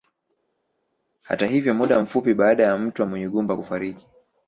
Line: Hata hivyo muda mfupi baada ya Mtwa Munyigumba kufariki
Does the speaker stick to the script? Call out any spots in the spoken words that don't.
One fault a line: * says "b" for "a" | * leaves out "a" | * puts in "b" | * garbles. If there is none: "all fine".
all fine